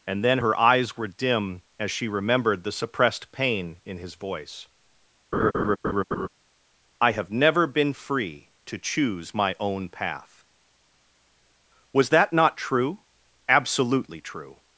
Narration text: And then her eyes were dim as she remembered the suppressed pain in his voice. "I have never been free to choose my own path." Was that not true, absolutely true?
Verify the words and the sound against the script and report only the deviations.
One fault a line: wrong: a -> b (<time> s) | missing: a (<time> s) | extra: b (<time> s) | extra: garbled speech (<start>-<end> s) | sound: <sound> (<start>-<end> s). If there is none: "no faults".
sound: laugh (5.3-6.3 s)